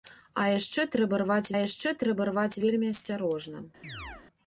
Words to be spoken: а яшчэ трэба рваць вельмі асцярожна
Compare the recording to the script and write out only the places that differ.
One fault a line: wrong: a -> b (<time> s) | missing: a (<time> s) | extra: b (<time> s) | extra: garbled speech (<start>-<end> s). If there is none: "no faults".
extra: яшчэ трэба рваць (1.6 s)